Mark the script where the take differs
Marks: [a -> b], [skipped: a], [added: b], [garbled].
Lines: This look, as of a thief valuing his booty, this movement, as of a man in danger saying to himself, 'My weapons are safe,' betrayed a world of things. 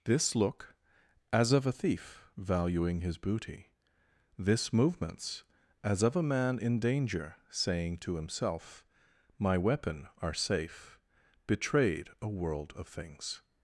This look, as of a thief valuing his booty, this [movement, -> movements] as of a man in danger saying to himself, 'My [weapons -> weapon] are safe,' betrayed a world of things.